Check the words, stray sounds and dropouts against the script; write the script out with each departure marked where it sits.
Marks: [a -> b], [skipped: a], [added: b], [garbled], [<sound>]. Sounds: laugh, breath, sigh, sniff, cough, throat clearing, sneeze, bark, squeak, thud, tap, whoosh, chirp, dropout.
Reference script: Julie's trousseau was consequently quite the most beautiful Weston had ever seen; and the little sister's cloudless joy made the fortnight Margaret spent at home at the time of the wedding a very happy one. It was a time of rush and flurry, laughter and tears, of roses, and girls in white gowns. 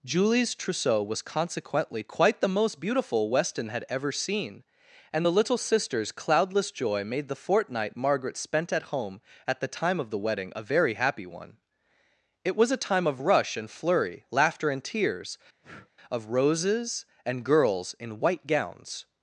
Julie's trousseau was consequently quite the most beautiful Weston had ever seen; and the little sister's cloudless joy made the fortnight Margaret spent at home at the time of the wedding a very happy one. It was a time of rush and flurry, laughter and tears, [breath] of roses, and girls in white gowns.